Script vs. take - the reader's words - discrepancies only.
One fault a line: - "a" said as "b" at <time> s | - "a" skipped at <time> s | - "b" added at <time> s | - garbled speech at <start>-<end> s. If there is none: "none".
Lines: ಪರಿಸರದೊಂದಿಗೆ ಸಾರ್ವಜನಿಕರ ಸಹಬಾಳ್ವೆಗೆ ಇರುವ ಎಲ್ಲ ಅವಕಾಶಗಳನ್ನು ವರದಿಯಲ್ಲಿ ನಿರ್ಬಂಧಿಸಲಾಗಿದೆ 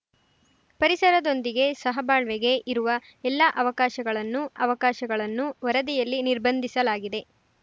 - "ಸಾರ್ವಜನಿಕರ" skipped at 1.7 s
- "ಅವಕಾಶಗಳನ್ನು" added at 4.6 s